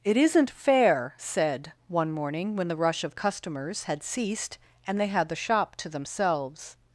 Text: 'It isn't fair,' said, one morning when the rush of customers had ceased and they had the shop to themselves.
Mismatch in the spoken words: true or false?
false